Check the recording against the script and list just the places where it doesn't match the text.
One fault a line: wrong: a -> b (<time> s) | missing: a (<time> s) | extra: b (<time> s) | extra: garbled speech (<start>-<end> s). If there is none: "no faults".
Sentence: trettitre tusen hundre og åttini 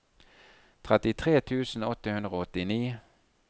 extra: åtte (1.9 s)